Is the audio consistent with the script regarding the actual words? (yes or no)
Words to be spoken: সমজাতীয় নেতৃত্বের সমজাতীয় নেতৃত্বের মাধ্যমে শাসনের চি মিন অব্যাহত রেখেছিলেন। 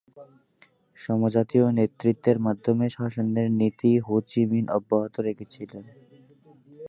no